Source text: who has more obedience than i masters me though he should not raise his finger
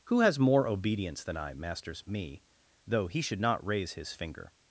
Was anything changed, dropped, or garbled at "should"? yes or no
no